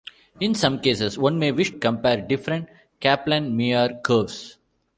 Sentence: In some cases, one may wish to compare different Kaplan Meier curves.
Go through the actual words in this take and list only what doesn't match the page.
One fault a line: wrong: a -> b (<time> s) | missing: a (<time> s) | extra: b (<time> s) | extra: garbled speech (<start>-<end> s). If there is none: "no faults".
missing: to (1.7 s)